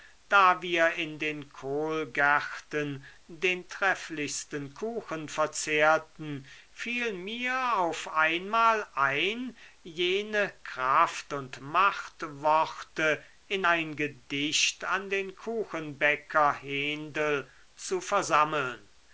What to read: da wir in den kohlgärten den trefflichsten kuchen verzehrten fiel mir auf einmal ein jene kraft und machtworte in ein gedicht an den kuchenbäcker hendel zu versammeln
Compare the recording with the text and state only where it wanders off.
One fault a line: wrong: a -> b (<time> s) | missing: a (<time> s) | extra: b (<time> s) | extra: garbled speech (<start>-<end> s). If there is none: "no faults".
no faults